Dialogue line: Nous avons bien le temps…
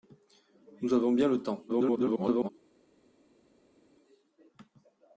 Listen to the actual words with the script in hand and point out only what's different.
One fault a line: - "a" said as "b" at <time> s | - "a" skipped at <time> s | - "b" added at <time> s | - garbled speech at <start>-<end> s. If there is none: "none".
- garbled speech at 1.7-2.5 s